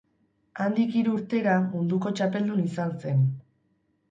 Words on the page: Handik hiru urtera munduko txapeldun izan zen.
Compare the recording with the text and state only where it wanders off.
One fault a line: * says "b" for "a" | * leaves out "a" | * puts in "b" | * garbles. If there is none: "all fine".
all fine